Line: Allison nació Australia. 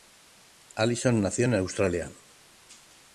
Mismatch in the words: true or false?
true